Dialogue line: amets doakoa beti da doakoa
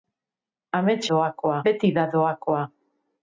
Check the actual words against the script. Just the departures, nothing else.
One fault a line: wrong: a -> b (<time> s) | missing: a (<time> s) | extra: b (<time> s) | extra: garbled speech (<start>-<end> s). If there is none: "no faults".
no faults